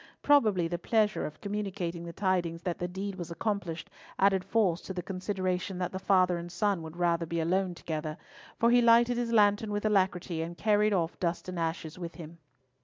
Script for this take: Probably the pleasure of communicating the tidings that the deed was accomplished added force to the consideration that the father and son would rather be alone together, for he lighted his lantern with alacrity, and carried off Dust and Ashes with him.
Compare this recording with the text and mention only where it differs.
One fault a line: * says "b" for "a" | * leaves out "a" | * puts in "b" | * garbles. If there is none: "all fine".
all fine